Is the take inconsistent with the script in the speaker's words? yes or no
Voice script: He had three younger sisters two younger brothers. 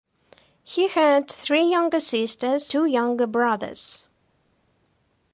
no